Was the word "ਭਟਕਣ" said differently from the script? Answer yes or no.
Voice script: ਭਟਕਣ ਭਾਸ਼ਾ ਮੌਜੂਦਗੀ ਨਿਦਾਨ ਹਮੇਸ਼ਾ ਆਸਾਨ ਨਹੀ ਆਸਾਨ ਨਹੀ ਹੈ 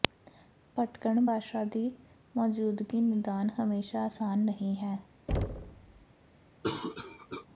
no